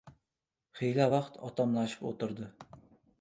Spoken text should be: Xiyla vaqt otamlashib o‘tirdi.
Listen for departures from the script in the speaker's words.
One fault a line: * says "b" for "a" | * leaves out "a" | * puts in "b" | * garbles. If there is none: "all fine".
all fine